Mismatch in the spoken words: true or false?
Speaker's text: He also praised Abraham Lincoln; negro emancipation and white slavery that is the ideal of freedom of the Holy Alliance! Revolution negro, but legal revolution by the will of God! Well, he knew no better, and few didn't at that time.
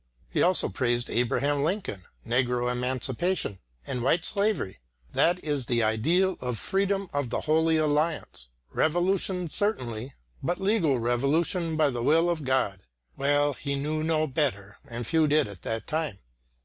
true